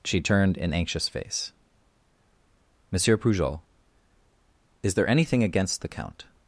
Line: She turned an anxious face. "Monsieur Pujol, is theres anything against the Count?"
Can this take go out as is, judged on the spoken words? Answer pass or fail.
fail